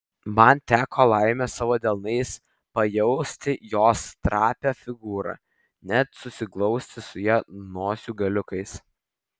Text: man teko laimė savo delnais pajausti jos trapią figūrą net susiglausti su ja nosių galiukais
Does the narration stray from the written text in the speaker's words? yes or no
no